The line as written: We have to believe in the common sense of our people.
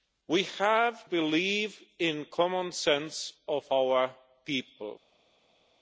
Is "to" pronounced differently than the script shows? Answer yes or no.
yes